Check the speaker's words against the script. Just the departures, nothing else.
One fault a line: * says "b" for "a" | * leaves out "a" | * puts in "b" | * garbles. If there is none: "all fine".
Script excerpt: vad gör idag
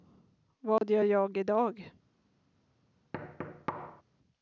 * puts in "jag"